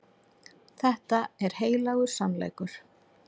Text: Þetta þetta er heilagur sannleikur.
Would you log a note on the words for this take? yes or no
yes